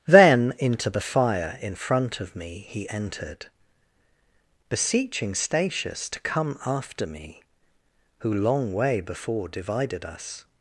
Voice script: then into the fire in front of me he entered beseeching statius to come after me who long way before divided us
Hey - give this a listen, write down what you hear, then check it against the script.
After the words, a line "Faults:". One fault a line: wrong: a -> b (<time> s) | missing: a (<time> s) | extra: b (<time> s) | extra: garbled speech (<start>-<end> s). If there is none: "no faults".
then into the fire in front of me he entered beseeching statius to come after me who long way before divided us
Faults:
no faults